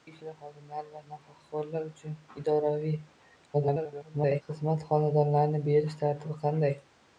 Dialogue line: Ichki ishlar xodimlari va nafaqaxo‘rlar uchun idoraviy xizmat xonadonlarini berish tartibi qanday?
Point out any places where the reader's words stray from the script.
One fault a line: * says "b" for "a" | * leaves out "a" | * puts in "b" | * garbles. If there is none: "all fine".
* garbles